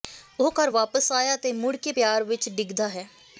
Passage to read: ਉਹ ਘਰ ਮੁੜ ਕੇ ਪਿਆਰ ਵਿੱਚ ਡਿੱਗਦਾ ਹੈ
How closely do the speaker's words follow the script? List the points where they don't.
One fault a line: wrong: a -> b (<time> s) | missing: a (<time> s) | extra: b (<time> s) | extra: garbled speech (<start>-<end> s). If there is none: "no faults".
extra: ਵਾਪਸ ਆਇਆ ਅਤੇ (0.7 s)